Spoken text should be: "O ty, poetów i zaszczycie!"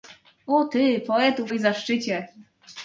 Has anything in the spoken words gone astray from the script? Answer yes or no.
no